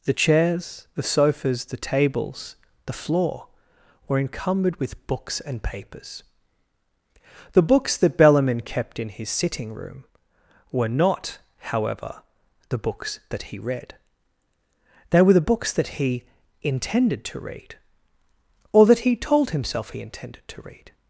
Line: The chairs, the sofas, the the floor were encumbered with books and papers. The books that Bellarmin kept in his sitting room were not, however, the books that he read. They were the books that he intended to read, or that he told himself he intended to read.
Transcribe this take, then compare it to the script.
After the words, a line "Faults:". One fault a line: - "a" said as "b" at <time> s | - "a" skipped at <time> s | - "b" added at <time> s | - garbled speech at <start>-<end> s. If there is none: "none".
The chairs, the sofas, the tables, the floor were encumbered with books and papers. The books that Bellarmin kept in his sitting room were not, however, the books that he read. They were the books that he intended to read, or that he told himself he intended to read.
Faults:
- "tables" added at 1.8 s